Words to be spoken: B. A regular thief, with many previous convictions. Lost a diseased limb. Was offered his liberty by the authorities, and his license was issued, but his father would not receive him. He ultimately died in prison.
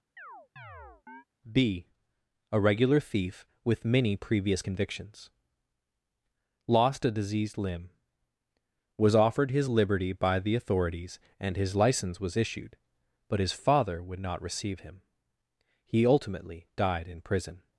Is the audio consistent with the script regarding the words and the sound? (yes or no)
no